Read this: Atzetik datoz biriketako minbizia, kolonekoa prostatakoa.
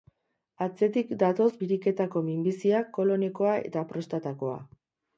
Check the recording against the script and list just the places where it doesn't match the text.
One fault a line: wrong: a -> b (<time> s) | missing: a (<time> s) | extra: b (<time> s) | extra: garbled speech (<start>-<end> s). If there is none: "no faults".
extra: eta (3.7 s)